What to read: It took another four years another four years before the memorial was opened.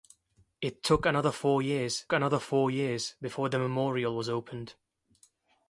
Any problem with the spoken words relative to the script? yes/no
no